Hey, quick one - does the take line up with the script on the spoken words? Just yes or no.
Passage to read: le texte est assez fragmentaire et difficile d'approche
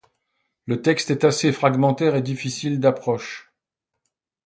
yes